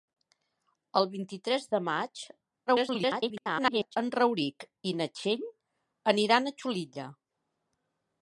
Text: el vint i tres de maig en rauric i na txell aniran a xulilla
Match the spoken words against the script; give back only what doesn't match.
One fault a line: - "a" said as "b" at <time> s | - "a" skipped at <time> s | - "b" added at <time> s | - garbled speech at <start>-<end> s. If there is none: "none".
- garbled speech at 2.7-4.0 s